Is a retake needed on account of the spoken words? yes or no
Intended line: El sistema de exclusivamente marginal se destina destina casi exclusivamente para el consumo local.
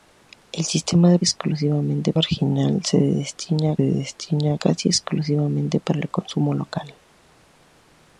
no